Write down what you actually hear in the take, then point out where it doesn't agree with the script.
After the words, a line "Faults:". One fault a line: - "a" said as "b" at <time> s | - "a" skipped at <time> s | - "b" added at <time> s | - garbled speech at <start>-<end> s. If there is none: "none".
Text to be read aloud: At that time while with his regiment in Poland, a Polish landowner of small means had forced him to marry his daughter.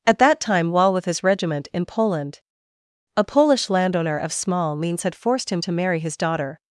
At that time while with his regiment in Poland, a Polish landowner of small means had forced him to marry his daughter.
Faults:
none